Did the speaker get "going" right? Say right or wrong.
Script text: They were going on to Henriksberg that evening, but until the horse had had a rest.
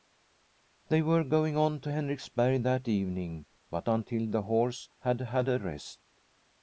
right